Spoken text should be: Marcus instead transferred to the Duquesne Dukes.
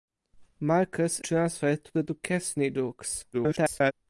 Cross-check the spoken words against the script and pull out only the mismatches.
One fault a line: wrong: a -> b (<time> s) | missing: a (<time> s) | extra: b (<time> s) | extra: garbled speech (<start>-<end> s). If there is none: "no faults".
missing: instead (1.2 s)
extra: garbled speech (3.3-3.9 s)